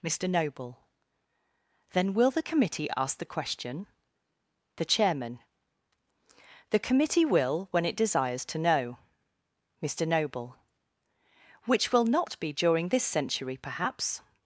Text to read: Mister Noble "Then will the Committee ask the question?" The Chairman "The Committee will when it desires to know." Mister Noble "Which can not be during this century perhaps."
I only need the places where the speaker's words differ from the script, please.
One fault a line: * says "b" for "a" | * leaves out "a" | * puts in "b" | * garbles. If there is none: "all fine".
* says "will" for "can"